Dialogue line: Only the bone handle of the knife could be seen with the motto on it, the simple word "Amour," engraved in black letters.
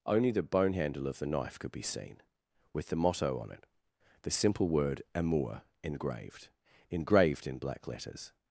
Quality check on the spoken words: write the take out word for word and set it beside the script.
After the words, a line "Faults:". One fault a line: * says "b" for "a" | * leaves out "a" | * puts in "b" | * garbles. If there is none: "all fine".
Only the bone handle of the knife could be seen with the motto on it, the simple word "Amour," engraved engraved in black letters.
Faults:
* puts in "engraved"